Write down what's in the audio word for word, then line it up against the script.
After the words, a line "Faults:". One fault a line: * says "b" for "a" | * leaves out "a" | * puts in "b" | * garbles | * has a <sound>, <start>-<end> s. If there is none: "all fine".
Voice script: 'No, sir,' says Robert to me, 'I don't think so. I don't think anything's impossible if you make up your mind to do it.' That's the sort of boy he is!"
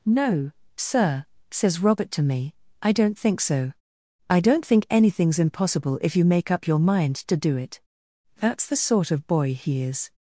'No, sir,' says Robert to me, 'I don't think so. I don't think anything's impossible if you make up your mind to do it.' That's the sort of boy he is!"
Faults:
all fine